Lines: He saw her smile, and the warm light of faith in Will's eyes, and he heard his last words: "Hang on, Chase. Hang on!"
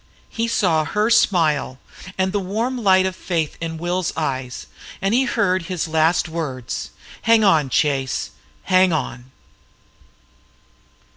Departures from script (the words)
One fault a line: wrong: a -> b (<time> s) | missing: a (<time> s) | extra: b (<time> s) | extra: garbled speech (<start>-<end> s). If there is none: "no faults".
no faults